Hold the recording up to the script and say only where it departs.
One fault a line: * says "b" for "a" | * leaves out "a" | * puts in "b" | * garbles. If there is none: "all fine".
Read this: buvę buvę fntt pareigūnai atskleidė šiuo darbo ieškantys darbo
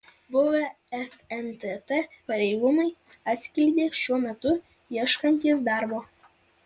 * leaves out "buvę"
* says "metu" for "darbo"